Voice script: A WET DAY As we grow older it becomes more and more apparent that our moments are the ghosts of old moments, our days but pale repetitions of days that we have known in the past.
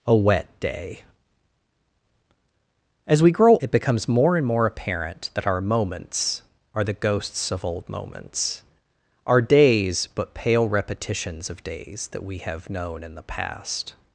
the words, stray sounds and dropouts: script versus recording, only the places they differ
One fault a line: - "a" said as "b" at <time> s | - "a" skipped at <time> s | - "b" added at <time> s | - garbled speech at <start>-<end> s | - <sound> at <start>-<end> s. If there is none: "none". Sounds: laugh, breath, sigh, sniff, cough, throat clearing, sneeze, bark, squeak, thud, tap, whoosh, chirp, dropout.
- "older" skipped at 3.6 s